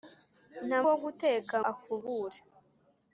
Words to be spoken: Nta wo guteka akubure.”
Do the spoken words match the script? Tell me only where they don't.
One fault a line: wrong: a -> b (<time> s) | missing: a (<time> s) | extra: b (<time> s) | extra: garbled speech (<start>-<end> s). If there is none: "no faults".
no faults